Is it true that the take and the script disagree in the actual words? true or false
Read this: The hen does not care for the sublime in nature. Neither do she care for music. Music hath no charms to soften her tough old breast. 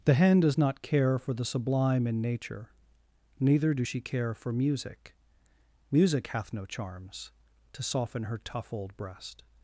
false